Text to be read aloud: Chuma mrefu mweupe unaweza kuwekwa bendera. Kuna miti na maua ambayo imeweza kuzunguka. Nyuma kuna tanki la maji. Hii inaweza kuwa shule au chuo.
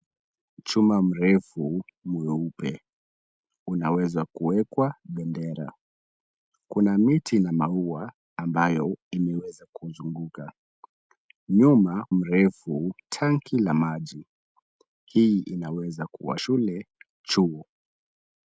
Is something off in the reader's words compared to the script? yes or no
yes